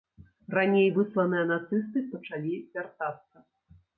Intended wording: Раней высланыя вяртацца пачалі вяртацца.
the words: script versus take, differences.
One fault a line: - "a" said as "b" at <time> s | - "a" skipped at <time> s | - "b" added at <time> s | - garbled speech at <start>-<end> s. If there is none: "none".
- "вяртацца" said as "нацысты" at 1.5 s